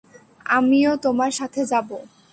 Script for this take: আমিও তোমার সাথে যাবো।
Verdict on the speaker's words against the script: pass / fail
pass